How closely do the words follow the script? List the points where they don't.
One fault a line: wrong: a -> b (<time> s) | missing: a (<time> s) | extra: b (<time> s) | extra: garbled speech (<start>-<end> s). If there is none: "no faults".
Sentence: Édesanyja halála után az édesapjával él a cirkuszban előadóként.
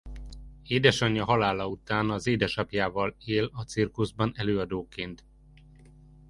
no faults